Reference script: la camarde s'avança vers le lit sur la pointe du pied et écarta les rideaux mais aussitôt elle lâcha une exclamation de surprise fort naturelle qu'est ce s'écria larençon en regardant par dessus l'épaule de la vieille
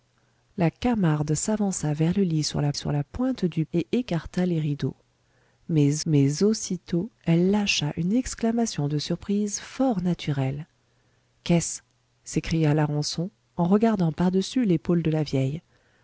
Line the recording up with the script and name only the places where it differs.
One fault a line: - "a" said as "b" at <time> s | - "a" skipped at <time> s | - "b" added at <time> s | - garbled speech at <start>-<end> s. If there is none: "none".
- "sur la" added at 2.7 s
- "pied" skipped at 3.6 s
- "mais" added at 6.1 s